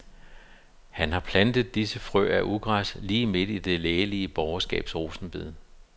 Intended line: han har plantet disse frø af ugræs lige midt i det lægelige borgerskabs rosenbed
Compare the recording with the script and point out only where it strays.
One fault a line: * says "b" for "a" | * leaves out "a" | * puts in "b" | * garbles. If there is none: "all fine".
all fine